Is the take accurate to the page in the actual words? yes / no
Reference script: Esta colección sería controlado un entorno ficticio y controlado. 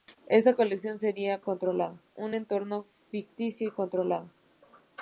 yes